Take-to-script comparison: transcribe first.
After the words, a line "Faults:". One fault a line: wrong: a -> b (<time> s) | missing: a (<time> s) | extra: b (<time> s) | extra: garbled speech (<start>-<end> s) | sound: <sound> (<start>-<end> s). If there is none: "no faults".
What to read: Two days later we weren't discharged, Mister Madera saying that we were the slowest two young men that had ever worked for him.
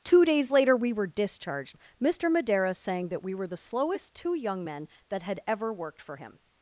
Two days later we were discharged, Mister Madera saying that we were the slowest two young men that had ever worked for him.
Faults:
wrong: weren't -> were (0.9 s)